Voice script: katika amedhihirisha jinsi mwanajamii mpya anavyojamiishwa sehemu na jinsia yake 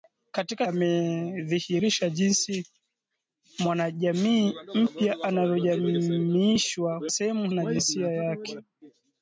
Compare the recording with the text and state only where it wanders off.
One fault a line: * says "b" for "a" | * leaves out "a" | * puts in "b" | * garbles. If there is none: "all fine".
all fine